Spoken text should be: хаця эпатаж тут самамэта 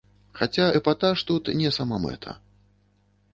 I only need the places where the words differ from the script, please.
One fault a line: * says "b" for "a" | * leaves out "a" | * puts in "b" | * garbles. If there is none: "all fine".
* puts in "не"